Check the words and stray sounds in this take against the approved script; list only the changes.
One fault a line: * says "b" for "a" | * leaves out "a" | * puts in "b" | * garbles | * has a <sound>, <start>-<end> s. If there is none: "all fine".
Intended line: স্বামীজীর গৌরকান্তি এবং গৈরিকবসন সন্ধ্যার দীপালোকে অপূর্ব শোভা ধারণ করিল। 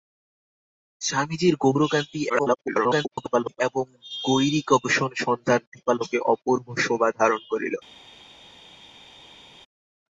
* garbles